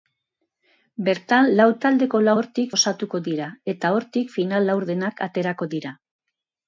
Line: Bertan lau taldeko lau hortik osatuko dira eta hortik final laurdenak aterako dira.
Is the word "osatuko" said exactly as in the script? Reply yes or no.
yes